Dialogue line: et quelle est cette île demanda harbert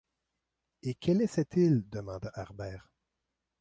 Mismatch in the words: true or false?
false